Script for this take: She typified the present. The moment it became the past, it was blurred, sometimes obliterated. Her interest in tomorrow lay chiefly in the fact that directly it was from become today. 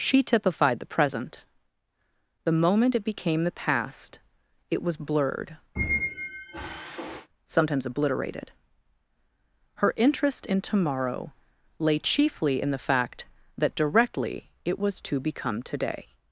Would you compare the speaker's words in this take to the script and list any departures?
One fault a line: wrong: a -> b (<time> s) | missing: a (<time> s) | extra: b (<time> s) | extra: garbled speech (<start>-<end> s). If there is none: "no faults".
wrong: from -> to (15.1 s)